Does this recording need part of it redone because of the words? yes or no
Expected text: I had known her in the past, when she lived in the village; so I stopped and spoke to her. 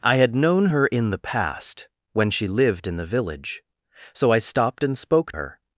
yes